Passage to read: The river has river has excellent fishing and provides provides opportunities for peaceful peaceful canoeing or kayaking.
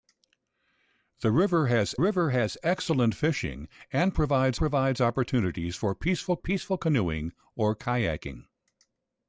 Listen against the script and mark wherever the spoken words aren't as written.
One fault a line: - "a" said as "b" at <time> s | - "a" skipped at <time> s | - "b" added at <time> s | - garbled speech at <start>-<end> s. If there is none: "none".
none